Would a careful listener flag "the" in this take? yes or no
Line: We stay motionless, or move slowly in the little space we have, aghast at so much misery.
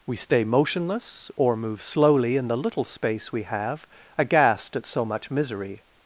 no